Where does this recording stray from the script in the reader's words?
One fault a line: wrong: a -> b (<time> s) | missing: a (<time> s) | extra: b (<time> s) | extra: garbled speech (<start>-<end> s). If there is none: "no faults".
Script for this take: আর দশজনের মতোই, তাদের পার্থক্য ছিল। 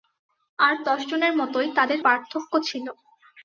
no faults